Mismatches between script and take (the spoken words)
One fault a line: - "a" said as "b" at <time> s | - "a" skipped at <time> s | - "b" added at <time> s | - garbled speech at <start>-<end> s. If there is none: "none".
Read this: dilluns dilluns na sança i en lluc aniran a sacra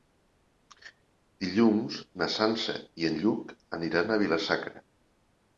- "dilluns" skipped at 2.0 s
- "vila" added at 4.2 s